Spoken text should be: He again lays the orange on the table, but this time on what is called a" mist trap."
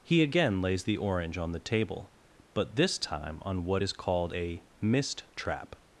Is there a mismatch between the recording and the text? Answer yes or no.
no